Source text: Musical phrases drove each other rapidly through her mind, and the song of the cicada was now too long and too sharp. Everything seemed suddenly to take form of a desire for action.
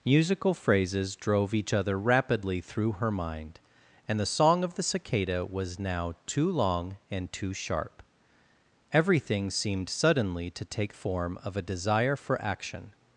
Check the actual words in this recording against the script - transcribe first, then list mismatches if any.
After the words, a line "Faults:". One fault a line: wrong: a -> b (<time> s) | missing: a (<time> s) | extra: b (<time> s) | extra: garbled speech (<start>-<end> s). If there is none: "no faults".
Musical phrases drove each other rapidly through her mind, and the song of the cicada was now too long and too sharp. Everything seemed suddenly to take form of a desire for action.
Faults:
no faults